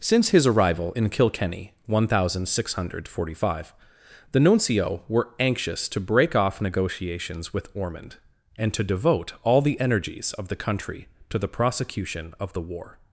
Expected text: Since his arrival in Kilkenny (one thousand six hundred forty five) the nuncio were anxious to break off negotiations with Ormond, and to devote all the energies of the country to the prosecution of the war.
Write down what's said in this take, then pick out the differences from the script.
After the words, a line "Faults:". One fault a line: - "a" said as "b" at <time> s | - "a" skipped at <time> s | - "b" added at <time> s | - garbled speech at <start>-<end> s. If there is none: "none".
Since his arrival in Kilkenny (one thousand six hundred forty five) the nuncio were anxious to break off negotiations with Ormond, and to devote all the energies of the country to the prosecution of the war.
Faults:
none